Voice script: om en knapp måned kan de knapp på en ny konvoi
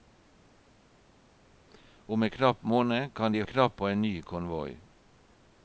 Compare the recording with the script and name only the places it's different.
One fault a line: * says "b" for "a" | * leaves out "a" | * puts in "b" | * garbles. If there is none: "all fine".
all fine